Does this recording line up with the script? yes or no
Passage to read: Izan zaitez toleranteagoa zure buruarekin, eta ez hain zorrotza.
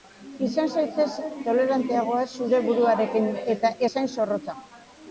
yes